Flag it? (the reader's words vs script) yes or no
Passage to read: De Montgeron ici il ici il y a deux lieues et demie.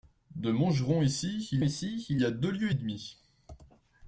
no